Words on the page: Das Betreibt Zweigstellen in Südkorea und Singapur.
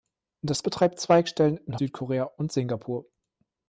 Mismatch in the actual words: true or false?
false